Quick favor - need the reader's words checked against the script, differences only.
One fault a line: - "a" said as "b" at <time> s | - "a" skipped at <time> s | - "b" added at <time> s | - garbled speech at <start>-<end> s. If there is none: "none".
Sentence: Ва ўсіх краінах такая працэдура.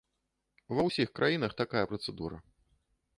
none